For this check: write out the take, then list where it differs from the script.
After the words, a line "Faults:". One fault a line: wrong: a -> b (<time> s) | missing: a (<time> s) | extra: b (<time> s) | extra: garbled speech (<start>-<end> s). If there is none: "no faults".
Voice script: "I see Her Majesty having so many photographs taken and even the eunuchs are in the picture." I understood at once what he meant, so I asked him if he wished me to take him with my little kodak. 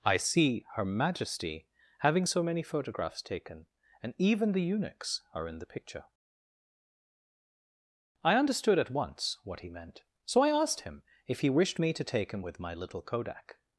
"I see Her Majesty having so many photographs taken and even the eunuchs are in the picture." I understood at once what he meant, so I asked him if he wished me to take him with my little kodak.
Faults:
no faults